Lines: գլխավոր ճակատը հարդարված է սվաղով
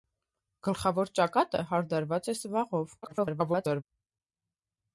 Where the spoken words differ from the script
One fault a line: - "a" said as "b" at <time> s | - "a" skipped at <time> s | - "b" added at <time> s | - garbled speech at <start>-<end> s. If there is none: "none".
- garbled speech at 3.0-3.8 s